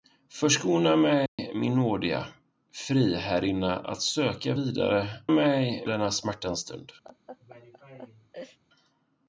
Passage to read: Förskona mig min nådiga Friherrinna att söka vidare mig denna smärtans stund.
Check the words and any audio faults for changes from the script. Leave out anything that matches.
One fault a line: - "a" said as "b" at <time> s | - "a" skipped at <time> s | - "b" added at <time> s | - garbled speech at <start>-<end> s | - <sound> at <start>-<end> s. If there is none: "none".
- dropout at 1.3-1.4 s
- laugh at 7.0-8.6 s